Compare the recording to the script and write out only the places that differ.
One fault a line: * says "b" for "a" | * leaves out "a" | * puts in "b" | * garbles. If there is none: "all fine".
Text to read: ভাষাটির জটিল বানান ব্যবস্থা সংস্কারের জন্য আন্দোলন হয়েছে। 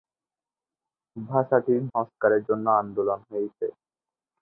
* leaves out "জটিল বানান ব্যবস্থা"